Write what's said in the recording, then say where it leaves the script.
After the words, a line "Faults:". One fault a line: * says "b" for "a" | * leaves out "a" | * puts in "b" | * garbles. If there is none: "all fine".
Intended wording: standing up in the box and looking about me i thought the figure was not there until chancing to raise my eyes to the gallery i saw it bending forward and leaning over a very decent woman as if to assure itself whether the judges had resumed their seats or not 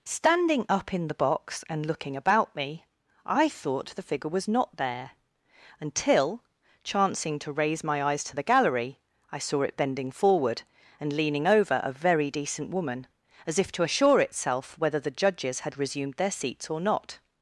standing up in the box and looking about me i thought the figure was not there until chancing to raise my eyes to the gallery i saw it bending forward and leaning over a very decent woman as if to assure itself whether the judges had resumed their seats or not
Faults:
all fine